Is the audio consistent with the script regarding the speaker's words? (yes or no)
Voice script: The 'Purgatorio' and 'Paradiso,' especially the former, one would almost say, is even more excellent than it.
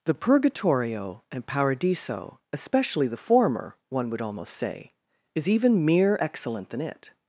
no